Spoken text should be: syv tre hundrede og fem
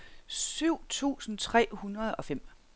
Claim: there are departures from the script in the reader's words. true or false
true